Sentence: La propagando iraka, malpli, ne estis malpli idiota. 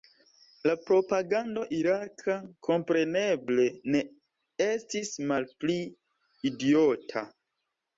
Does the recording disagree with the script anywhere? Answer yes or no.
yes